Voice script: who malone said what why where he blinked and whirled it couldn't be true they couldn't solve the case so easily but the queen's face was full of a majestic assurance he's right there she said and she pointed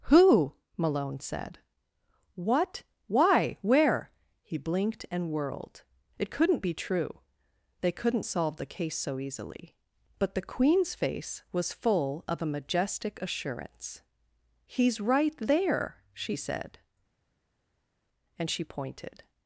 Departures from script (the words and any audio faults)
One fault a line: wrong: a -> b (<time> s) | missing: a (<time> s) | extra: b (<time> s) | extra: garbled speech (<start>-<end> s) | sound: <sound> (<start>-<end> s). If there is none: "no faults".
no faults